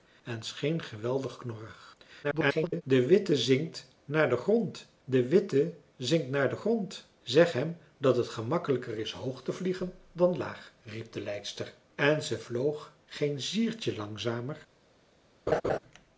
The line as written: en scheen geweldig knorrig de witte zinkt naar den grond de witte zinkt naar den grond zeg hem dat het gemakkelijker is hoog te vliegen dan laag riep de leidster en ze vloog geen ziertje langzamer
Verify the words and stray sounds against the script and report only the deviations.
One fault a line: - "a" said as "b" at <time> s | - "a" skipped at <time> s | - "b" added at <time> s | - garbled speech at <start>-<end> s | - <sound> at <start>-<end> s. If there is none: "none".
- garbled speech at 2.2-2.8 s
- laugh at 15.5-15.8 s